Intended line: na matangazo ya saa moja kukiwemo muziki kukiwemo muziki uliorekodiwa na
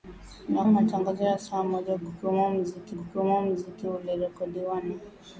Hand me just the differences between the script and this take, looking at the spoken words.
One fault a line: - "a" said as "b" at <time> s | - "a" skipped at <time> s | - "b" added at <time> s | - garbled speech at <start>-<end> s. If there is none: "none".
none